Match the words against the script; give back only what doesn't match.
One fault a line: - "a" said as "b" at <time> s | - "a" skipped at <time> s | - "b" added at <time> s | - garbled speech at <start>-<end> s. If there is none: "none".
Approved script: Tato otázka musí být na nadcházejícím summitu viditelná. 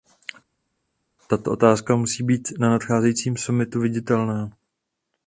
none